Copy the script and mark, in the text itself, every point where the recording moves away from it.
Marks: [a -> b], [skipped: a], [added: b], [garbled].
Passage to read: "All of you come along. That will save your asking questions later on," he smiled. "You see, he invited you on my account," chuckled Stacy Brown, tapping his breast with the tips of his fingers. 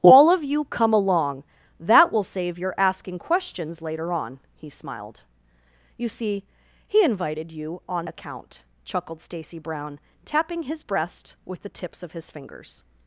"All of you come along. That will save your asking questions later on," he smiled. "You see, he invited you on [skipped: my] account," chuckled Stacy Brown, tapping his breast with the tips of his fingers.